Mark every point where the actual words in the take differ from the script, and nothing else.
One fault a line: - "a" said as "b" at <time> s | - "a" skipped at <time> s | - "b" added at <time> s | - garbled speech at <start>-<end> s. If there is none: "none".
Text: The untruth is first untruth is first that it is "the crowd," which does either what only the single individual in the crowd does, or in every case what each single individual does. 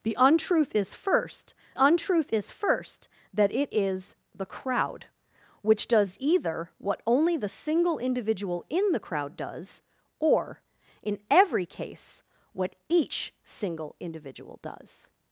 none